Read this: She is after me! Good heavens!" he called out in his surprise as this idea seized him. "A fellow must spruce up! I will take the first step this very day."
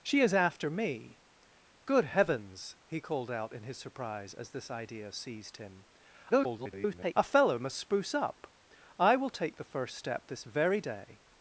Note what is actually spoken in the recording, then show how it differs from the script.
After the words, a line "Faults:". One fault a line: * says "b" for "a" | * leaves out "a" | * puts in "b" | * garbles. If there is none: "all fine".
She is after me! Good heavens!" he called out in his surprise as this idea seized him. [garbled] "A fellow must spruce up! I will take the first step this very day."
Faults:
* garbles